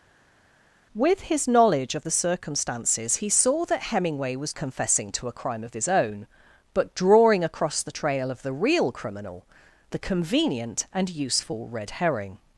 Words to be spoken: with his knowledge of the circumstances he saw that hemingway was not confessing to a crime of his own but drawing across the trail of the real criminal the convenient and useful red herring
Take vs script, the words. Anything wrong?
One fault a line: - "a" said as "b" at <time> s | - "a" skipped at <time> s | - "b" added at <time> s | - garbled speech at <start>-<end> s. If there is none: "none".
- "not" skipped at 4.5 s